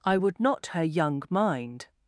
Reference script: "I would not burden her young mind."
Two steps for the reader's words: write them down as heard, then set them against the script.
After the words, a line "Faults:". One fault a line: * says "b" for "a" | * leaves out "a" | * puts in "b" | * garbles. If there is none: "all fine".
"I would not her young mind."
Faults:
* leaves out "burden"